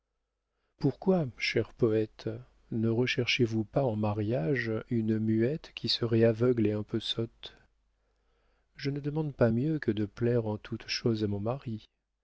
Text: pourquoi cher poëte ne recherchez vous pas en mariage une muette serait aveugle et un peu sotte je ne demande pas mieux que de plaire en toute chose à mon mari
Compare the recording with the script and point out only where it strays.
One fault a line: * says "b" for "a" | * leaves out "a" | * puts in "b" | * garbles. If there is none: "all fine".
* puts in "qui"